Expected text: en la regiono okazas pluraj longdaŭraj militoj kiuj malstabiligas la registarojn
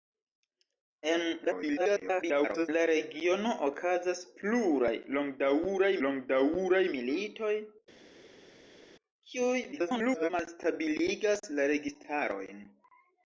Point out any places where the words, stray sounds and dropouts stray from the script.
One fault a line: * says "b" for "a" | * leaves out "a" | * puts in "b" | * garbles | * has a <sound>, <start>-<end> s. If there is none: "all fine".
* garbles
* puts in "longdaŭraj"
* garbles